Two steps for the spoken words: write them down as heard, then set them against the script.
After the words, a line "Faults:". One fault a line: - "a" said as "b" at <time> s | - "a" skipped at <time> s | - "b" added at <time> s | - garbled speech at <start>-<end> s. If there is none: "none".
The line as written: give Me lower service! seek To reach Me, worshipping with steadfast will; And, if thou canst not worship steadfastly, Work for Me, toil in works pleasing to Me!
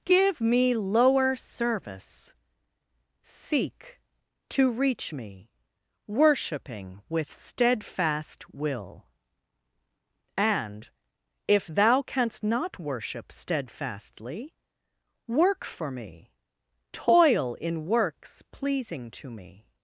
give Me lower service! seek To reach Me, worshipping with steadfast will; And, if thou canst not worship steadfastly, Work for Me, toil in works pleasing to Me!
Faults:
none